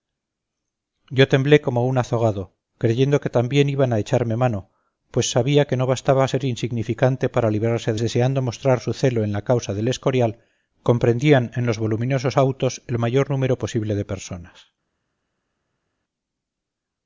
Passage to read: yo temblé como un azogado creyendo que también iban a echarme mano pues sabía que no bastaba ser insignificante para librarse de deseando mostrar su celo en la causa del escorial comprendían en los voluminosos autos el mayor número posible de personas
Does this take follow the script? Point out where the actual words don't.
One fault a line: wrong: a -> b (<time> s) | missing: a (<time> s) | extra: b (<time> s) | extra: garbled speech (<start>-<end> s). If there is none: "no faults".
no faults